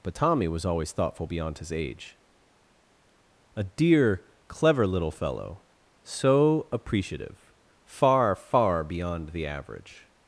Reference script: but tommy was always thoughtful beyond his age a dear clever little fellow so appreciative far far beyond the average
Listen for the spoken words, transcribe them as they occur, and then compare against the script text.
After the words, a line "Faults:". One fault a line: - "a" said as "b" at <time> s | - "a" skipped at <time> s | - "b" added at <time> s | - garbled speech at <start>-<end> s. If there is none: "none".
but tommy was always thoughtful beyond his age a dear clever little fellow so appreciative far far beyond the average
Faults:
none